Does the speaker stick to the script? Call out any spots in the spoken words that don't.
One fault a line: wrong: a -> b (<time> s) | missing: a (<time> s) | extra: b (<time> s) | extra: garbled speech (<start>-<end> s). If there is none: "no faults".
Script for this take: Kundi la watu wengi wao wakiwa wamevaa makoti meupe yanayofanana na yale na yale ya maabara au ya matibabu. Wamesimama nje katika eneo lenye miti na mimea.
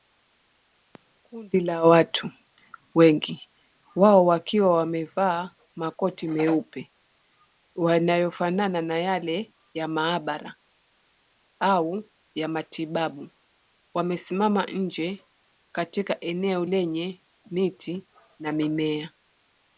missing: na yale (9.5 s)